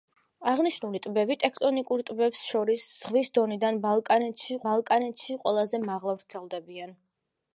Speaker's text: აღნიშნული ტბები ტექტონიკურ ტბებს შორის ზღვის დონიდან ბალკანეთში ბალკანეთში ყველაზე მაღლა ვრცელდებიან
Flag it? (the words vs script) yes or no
no